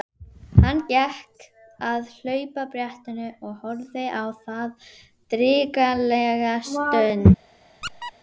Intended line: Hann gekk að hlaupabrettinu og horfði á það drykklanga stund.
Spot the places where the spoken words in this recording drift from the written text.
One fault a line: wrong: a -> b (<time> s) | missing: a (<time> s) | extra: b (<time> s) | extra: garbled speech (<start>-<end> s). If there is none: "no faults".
no faults